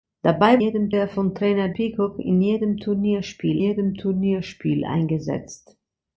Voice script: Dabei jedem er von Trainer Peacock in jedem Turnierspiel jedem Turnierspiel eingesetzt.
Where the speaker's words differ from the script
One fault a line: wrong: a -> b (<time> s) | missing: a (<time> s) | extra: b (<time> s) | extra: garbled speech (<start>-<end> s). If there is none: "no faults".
no faults